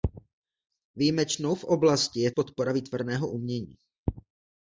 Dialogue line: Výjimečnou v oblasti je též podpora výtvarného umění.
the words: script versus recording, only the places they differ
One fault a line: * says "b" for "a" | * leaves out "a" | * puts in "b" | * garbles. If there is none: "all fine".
* leaves out "též"